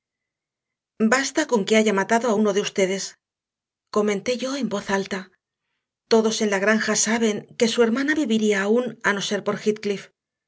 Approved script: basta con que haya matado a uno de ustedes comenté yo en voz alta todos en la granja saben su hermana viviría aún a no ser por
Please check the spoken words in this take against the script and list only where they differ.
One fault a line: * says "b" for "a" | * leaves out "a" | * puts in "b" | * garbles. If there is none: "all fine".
* puts in "que"